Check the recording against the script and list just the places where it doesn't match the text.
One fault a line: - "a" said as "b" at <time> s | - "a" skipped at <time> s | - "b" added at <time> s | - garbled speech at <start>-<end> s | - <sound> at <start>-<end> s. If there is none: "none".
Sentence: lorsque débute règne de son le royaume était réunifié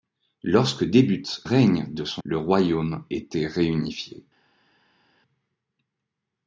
none